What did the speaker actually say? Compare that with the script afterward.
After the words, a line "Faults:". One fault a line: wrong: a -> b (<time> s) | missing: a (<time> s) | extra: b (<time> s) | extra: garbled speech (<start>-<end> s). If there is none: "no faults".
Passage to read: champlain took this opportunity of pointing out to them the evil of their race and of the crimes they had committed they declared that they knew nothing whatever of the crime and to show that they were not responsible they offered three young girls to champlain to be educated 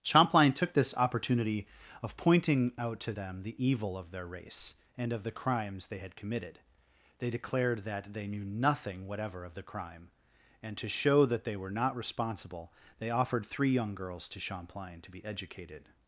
champlain took this opportunity of pointing out to them the evil of their race and of the crimes they had committed they declared that they knew nothing whatever of the crime and to show that they were not responsible they offered three young girls to champlain to be educated
Faults:
no faults